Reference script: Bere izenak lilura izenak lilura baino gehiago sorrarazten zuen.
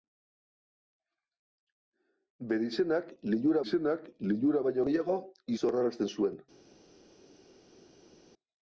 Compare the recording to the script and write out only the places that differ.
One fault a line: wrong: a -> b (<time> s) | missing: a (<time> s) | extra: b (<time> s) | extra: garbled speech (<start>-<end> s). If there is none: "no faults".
no faults